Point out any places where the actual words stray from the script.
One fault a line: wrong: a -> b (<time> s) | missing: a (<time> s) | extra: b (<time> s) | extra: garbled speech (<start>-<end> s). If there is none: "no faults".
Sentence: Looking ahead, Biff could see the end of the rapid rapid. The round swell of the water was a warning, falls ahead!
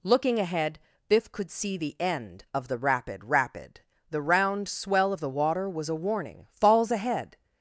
no faults